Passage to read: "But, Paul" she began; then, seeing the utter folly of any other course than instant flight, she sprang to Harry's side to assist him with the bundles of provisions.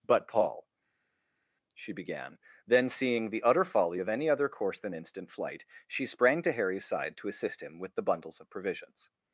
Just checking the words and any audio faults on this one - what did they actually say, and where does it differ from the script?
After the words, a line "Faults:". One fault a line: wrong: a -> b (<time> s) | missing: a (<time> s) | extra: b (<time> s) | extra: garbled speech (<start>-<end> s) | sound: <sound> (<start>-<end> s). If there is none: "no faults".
"But, Paul" she began; then, seeing the utter folly of any other course than instant flight, she sprang to Harry's side to assist him with the bundles of provisions.
Faults:
no faults